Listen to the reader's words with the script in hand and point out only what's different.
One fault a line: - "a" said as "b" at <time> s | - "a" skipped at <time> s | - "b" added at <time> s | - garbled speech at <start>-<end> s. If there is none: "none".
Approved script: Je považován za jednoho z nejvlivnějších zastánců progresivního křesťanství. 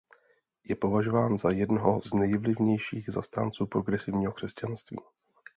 none